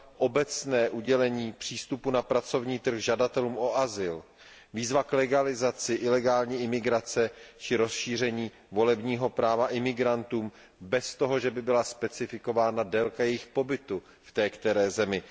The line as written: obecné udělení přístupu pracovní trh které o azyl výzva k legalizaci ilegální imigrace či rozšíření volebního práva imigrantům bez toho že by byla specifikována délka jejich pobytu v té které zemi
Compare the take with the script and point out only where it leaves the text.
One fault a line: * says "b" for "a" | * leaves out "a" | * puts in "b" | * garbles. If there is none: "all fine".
* puts in "na"
* says "žadatelům" for "které"